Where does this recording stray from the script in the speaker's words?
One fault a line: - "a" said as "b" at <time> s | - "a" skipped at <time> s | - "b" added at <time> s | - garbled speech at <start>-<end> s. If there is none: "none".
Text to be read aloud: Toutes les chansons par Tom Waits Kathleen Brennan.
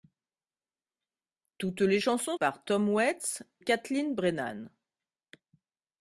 none